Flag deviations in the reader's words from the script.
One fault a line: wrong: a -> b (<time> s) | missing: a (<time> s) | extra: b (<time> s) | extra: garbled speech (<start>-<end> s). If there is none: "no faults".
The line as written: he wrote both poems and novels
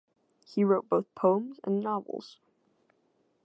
no faults